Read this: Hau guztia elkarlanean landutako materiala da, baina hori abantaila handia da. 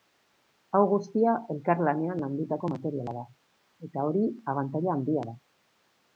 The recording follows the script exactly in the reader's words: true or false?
false